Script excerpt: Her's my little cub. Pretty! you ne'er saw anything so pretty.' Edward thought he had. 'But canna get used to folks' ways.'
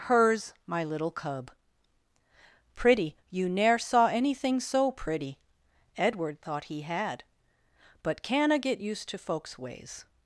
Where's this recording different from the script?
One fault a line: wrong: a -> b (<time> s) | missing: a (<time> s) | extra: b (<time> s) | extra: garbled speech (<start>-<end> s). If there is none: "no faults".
no faults